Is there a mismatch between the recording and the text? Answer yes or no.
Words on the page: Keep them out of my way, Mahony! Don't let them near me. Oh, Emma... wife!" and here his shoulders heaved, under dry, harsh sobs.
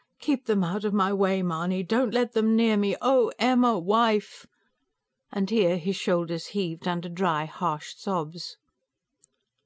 no